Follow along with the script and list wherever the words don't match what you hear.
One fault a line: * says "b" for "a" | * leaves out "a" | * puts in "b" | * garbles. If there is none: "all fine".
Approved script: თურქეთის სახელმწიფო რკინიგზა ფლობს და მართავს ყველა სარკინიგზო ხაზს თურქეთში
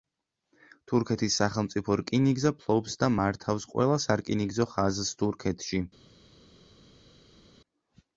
all fine